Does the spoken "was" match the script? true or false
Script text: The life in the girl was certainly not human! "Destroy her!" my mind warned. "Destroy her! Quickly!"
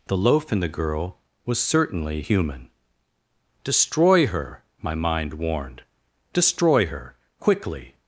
true